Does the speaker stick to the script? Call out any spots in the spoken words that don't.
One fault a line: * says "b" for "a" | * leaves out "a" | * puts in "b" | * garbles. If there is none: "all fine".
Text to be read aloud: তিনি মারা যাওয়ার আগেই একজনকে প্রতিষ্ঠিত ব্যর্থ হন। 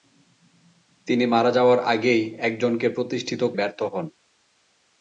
all fine